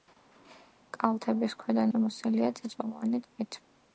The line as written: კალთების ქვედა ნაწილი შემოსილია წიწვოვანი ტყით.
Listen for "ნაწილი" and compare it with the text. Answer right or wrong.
wrong